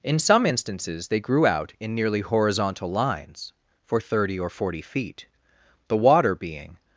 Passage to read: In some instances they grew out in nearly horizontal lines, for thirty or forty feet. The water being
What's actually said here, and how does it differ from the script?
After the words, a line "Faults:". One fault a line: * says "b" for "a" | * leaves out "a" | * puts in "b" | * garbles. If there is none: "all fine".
In some instances they grew out in nearly horizontal lines, for thirty or forty feet. The water being
Faults:
all fine